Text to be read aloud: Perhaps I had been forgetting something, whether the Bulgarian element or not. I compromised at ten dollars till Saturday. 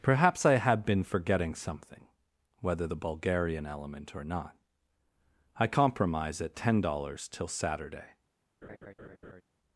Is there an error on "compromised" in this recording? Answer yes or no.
yes